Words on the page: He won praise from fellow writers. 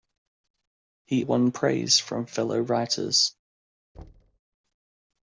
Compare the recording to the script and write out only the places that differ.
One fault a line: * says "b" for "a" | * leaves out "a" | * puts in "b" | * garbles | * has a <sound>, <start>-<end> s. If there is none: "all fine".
* has a thud, 3.9-4.4 s